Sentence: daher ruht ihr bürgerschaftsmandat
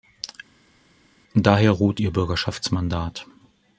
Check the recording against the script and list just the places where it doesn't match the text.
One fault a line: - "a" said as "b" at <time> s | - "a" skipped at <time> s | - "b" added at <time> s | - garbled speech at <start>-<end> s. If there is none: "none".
none